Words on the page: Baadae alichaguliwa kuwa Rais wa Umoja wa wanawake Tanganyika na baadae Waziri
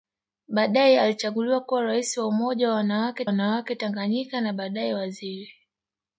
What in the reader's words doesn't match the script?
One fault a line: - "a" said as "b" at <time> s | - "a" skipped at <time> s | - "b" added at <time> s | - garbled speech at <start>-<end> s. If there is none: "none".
- "wanawake" added at 3.2 s